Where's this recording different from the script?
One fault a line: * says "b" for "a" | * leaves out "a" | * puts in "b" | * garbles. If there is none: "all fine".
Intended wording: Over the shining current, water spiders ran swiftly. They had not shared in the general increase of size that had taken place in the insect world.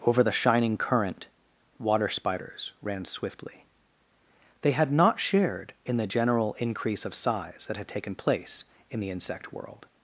all fine